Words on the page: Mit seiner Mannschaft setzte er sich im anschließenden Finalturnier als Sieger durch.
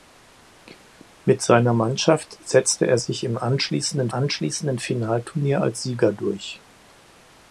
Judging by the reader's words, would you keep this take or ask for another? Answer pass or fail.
fail